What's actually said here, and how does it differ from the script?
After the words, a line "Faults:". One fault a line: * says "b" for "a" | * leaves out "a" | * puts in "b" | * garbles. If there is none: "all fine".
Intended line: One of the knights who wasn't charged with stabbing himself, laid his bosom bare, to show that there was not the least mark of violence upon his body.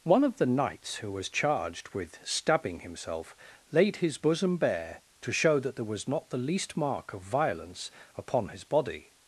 One of the knights who was charged with stabbing himself, laid his bosom bare, to show that there was not the least mark of violence upon his body.
Faults:
* says "was" for "wasn't"